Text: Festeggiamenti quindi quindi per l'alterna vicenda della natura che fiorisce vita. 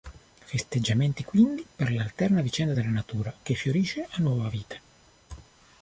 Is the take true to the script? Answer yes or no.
no